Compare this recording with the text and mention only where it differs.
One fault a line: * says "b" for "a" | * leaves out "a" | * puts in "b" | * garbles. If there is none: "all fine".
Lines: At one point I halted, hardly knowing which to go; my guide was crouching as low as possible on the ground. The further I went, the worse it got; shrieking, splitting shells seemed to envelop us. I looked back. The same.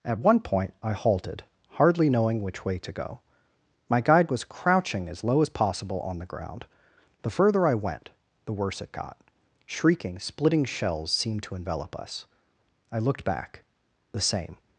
* puts in "way"